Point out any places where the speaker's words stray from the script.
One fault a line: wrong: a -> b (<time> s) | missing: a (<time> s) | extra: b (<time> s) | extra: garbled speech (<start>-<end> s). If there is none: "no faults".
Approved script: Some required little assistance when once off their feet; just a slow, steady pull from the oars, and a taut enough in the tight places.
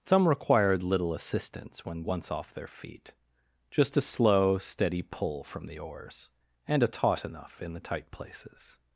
no faults